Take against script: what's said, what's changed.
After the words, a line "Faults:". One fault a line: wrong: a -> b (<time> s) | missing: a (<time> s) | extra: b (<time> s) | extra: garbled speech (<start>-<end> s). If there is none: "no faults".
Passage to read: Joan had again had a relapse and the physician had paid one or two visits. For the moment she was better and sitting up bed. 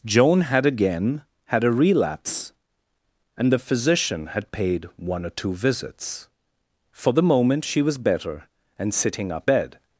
Joan had again had a relapse and the physician had paid one or two visits. For the moment she was better and sitting up bed.
Faults:
no faults